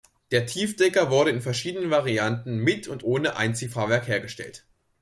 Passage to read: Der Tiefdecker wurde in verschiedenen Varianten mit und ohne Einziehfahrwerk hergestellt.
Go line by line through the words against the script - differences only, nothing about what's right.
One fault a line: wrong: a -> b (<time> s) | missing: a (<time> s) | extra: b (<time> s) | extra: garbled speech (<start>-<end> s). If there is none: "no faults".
no faults